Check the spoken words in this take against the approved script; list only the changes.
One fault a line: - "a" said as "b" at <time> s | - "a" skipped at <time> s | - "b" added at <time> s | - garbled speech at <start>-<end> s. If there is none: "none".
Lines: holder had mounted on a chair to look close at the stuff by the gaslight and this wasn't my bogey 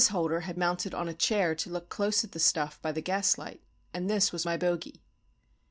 - "wasn't" said as "was" at 4.3 s